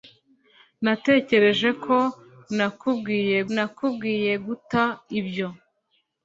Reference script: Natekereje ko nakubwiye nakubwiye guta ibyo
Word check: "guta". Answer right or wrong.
right